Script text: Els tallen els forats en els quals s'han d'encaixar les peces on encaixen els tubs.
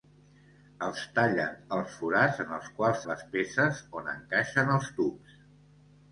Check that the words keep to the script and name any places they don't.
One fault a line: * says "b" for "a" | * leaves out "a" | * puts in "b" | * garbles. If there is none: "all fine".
* leaves out "s'han d'encaixar"